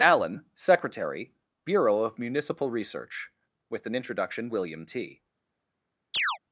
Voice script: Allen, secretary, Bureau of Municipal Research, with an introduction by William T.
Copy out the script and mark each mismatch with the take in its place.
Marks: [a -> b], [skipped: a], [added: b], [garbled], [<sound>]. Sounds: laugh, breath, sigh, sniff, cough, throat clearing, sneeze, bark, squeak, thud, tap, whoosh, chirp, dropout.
Allen, secretary, Bureau of Municipal Research, with an introduction [skipped: by] William T. [chirp]